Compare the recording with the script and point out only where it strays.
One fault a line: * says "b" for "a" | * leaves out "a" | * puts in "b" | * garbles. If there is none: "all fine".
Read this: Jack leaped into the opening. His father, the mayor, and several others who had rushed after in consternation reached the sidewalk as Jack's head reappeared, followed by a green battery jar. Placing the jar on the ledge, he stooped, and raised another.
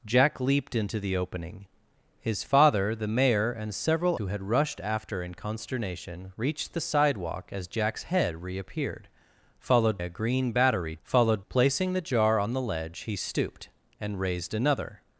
* leaves out "others"
* leaves out "by"
* says "followed" for "jar"